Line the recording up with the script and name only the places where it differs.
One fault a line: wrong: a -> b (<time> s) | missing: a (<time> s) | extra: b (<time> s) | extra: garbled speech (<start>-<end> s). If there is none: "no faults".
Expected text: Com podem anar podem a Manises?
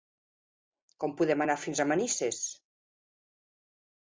wrong: podem -> fins (1.6 s)